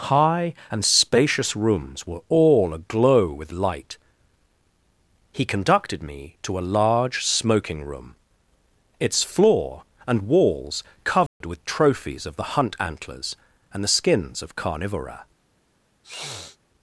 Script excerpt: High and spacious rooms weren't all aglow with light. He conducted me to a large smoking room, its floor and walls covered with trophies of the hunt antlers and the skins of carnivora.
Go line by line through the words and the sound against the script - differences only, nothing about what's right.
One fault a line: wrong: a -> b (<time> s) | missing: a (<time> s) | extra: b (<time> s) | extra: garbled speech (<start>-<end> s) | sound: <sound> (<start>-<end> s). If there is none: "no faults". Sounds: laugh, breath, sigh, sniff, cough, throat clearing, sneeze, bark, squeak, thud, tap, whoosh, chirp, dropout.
wrong: weren't -> were (2.1 s)
sound: dropout (11.3-11.4 s)
sound: sniff (16.0-16.6 s)